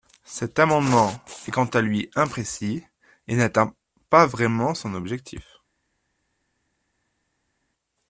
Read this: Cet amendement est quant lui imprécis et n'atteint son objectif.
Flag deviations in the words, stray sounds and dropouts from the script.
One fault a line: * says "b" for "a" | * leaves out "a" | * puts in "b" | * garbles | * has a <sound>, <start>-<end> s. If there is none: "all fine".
* puts in "à"
* puts in "pas vraiment"